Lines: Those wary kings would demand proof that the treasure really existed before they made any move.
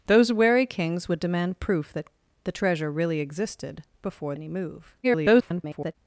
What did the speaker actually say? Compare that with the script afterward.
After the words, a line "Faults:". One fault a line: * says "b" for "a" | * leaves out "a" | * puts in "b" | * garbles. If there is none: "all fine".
Those wary kings would demand proof that the treasure really existed before any move. [garbled]
Faults:
* leaves out "they made"
* garbles